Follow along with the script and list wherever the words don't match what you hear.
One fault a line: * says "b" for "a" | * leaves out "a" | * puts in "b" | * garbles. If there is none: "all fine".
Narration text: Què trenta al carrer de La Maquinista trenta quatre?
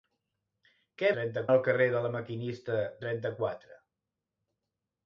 all fine